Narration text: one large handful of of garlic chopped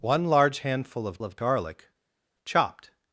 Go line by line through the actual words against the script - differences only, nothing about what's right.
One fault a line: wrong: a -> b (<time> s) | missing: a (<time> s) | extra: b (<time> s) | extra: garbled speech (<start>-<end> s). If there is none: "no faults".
no faults